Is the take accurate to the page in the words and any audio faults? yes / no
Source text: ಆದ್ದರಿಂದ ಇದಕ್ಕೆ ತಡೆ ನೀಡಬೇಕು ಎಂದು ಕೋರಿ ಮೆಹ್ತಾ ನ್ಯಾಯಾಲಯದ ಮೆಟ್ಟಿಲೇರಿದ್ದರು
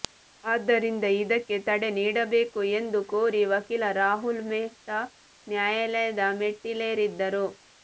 no